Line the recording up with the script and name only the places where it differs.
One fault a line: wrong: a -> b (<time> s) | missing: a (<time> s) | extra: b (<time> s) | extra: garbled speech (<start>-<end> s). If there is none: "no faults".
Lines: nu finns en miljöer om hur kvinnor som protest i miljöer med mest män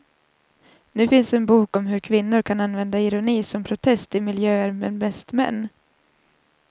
wrong: miljöer -> bok (1.4 s)
extra: kan använda ironi (2.4 s)